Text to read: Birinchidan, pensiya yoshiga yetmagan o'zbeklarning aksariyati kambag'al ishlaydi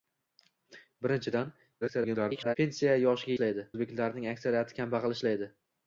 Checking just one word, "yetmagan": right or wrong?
wrong